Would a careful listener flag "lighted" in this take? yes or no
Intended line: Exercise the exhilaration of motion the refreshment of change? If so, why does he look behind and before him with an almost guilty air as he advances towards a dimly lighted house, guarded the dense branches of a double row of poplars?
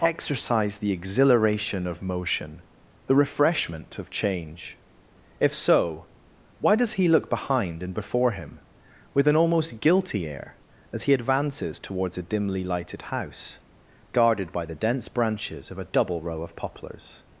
no